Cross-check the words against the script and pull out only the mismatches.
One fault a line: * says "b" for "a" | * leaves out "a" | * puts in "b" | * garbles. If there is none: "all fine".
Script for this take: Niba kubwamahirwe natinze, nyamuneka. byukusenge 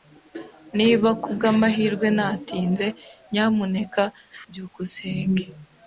all fine